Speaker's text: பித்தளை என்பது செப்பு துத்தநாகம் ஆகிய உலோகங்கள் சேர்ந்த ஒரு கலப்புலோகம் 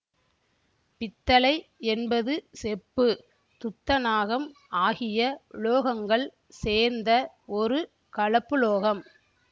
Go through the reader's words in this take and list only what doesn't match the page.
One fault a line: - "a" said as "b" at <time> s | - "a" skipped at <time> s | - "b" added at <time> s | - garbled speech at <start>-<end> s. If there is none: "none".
none